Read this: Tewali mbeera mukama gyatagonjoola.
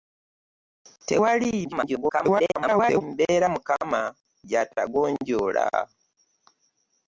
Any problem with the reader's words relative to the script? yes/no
yes